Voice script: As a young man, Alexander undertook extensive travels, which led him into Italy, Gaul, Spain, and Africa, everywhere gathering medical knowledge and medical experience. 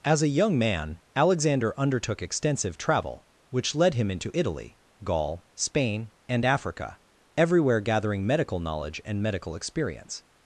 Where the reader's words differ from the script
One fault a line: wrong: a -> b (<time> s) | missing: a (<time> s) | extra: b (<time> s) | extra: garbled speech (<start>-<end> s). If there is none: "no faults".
wrong: travels -> travel (2.8 s)